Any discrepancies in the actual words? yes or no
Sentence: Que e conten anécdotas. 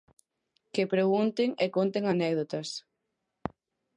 yes